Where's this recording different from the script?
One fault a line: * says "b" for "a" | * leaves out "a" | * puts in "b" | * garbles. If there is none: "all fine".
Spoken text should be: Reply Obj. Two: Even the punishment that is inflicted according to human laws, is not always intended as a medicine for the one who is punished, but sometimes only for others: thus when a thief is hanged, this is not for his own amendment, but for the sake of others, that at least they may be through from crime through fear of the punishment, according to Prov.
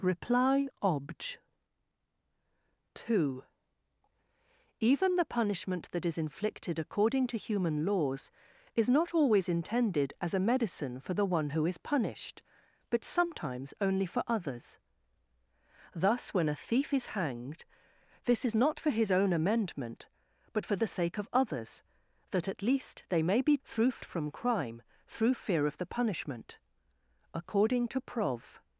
all fine